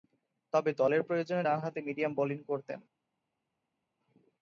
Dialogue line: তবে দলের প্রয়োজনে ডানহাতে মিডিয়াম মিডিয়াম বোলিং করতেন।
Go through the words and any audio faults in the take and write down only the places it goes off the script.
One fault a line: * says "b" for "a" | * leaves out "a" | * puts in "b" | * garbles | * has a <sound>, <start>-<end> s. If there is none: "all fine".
* leaves out "মিডিয়াম"